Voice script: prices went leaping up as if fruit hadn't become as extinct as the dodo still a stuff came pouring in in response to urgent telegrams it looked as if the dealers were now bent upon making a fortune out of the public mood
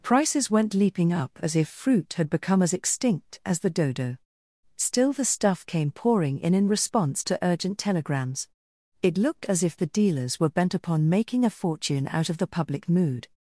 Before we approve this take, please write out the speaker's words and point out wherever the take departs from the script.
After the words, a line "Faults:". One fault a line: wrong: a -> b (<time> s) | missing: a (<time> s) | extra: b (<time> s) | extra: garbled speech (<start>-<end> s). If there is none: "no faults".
prices went leaping up as if fruit had become as extinct as the dodo still the stuff came pouring in in response to urgent telegrams it looked as if the dealers were bent upon making a fortune out of the public mood
Faults:
wrong: hadn't -> had (2.1 s)
wrong: a -> the (5.1 s)
missing: now (10.5 s)